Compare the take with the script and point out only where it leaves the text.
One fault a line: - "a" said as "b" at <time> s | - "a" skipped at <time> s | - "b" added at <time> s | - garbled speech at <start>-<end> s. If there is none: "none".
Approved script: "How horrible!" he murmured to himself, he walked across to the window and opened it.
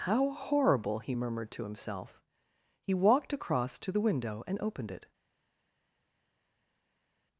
none